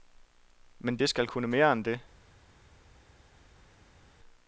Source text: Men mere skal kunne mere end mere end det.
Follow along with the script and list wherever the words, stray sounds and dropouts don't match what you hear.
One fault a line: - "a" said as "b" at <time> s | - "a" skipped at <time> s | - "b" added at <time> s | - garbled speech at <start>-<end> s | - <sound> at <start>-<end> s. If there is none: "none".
- "mere" said as "det" at 0.9 s
- "mere end" skipped at 1.8 s